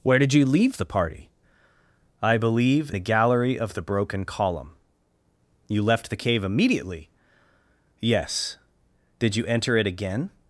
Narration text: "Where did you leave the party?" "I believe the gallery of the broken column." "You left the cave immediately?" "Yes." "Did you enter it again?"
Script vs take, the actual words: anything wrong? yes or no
no